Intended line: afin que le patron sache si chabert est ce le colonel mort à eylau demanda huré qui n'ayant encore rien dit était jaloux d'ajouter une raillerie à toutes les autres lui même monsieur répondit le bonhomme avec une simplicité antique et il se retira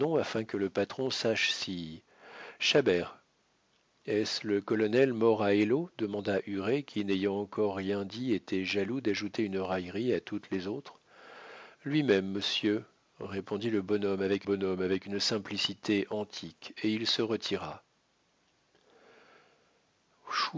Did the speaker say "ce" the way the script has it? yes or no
yes